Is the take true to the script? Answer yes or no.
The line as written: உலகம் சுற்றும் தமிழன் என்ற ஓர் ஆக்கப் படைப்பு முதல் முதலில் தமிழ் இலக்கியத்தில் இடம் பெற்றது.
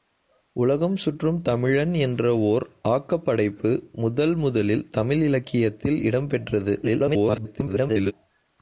no